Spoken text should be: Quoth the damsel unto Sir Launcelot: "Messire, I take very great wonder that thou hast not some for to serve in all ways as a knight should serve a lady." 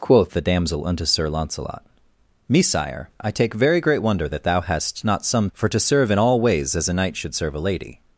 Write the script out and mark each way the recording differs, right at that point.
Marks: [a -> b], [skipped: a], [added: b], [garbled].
Quoth the damsel unto Sir Launcelot: "Messire, I take very great wonder that thou hast not some for to serve in all ways as a knight should serve a lady."